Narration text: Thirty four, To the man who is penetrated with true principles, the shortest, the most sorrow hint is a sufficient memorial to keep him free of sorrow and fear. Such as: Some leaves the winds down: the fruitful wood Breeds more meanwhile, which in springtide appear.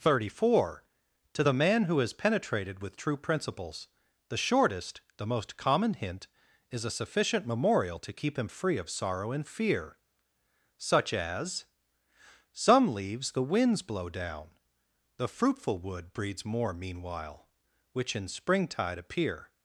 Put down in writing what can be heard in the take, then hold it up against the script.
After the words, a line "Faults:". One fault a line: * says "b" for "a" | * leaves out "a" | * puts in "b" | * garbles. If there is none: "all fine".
Thirty four, To the man who is penetrated with true principles, the shortest, the most common hint is a sufficient memorial to keep him free of sorrow and fear. Such as: Some leaves the winds blow down: the fruitful wood Breeds more meanwhile, which in springtide appear.
Faults:
* says "common" for "sorrow"
* puts in "blow"